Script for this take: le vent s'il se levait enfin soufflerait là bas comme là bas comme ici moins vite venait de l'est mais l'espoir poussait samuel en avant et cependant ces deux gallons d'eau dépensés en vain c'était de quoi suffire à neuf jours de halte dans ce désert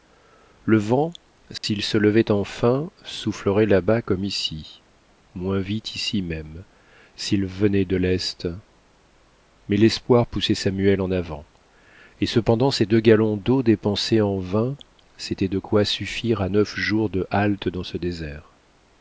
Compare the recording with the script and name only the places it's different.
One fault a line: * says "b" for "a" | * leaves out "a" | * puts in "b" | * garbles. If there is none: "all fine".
* says "ici moins vite" for "là bas comme"
* says "même s'il" for "moins vite"